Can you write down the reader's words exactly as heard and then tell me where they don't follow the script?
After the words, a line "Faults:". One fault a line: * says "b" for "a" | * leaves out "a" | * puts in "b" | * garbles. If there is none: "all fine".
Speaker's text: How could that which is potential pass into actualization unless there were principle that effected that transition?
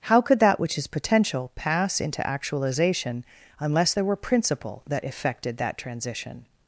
How could that which is potential pass into actualization unless there were principle that effected that transition?
Faults:
all fine